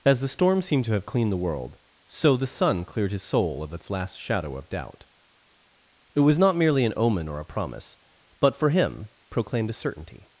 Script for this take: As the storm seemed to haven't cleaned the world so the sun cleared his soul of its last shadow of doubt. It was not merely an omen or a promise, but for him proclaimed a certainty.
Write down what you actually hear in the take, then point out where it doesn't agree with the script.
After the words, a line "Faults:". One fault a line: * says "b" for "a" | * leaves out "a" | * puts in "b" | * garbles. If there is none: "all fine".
As the storm seemed to have cleaned the world so the sun cleared his soul of its last shadow of doubt. It was not merely an omen or a promise, but for him proclaimed a certainty.
Faults:
* says "have" for "haven't"